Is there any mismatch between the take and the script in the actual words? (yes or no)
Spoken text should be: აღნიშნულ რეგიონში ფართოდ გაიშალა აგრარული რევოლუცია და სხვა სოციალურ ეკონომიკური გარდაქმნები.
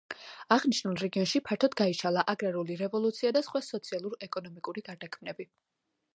no